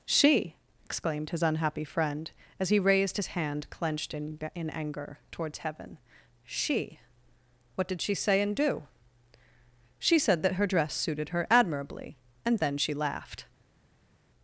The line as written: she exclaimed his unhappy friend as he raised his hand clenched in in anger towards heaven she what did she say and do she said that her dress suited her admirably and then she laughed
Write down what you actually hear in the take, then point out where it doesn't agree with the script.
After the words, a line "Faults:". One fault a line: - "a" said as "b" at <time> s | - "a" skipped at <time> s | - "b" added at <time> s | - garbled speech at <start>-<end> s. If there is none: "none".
she exclaimed his unhappy friend as he raised his hand clenched in in anger towards heaven she what did she say and do she said that her dress suited her admirably and then she laughed
Faults:
none